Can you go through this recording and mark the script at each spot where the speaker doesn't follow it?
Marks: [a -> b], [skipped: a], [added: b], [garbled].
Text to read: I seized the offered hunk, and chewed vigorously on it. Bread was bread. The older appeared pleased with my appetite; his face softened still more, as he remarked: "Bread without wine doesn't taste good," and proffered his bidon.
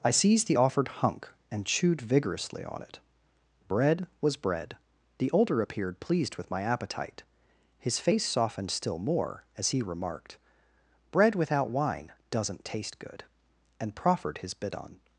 I seized the offered hunk, and chewed vigorously on it. Bread was bread. The older appeared pleased with my appetite; his face softened still more, as he remarked: "Bread without wine doesn't taste good," and proffered his bidon.